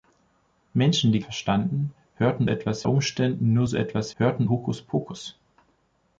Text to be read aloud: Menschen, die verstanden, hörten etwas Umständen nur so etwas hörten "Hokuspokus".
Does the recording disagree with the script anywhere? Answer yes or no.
no